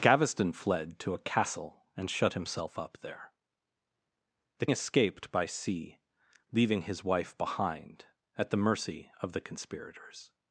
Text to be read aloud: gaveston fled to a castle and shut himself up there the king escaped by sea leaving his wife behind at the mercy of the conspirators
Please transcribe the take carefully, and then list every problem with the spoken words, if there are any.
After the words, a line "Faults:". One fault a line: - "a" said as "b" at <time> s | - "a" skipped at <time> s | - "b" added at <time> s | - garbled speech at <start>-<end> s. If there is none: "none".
gaveston fled to a castle and shut himself up there the escaped by sea leaving his wife behind at the mercy of the conspirators
Faults:
- "king" skipped at 4.7 s